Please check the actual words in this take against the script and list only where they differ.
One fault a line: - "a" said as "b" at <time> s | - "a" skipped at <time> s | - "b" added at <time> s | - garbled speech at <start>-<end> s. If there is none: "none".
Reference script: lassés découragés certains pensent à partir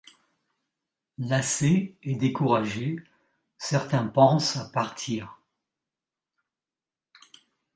- "et" added at 2.0 s